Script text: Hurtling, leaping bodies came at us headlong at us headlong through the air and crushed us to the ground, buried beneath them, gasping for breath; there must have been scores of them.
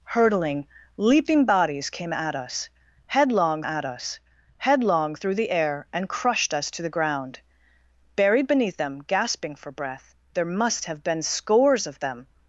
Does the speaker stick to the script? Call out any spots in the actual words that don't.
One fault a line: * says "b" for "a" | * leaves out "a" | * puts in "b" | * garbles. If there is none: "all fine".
all fine